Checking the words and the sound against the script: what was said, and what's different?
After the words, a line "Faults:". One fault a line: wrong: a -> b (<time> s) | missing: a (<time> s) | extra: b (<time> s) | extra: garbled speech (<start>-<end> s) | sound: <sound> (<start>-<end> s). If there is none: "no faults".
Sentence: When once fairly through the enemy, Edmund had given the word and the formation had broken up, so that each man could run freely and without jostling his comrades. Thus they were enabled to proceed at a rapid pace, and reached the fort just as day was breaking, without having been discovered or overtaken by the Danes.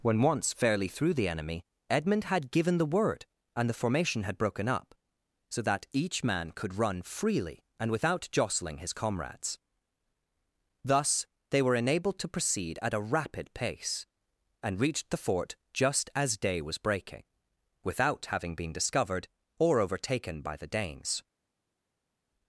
When once fairly through the enemy, Edmund had given the word and the formation had broken up, so that each man could run freely and without jostling his comrades. Thus they were enabled to proceed at a rapid pace, and reached the fort just as day was breaking, without having been discovered or overtaken by the Danes.
Faults:
no faults